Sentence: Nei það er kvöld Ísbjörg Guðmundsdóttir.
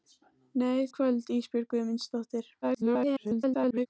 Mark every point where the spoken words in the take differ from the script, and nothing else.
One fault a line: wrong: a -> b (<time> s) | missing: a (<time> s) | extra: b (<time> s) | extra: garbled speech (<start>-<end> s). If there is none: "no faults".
missing: það (0.9 s)
extra: garbled speech (2.6-3.9 s)